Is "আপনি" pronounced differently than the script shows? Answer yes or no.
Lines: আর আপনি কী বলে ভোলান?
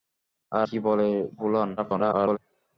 yes